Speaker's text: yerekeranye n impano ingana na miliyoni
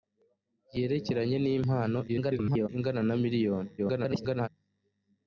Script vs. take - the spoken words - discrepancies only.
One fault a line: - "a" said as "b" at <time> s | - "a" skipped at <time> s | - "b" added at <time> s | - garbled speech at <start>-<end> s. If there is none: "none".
- garbled speech at 2.1-2.7 s
- garbled speech at 3.8-4.5 s